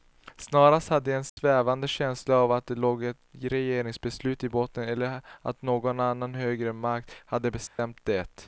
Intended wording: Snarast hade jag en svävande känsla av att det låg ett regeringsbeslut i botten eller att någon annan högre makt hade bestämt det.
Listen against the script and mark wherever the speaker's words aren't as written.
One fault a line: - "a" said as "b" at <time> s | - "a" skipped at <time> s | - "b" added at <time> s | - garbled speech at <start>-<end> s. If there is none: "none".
none